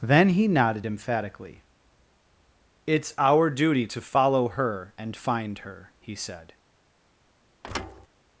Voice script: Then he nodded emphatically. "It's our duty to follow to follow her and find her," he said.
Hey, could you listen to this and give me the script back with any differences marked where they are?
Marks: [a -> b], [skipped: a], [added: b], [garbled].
Then he nodded emphatically. "It's our duty to follow [skipped: to follow] her and find her," he said.